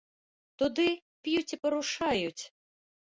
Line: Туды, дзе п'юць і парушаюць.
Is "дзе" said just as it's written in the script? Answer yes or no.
no